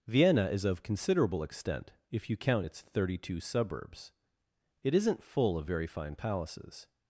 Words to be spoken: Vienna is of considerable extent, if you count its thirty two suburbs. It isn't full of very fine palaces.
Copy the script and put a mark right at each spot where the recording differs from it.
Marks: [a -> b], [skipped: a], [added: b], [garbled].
Vienna is of considerable extent, if you count its thirty two suburbs. It isn't full of very fine palaces.